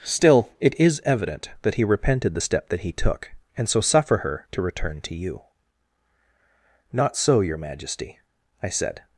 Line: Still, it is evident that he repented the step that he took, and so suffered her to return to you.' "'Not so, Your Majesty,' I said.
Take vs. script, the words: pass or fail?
fail